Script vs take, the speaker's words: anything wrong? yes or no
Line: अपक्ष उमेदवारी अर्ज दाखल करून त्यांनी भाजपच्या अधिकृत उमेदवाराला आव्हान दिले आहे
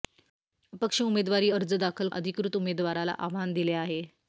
yes